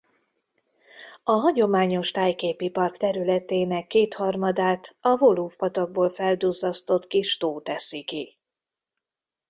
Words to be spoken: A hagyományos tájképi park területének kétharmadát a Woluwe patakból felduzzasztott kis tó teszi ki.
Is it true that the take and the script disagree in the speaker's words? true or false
false